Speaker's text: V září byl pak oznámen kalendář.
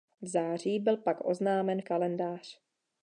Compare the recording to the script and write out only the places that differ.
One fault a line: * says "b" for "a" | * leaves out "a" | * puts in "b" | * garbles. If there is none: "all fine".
all fine